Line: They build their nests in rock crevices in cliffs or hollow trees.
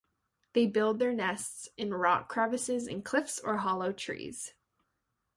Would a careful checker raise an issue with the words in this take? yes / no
no